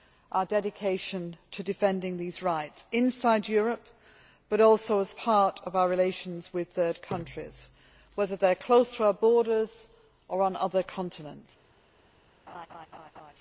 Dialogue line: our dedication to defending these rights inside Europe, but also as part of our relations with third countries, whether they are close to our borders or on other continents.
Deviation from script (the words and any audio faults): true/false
true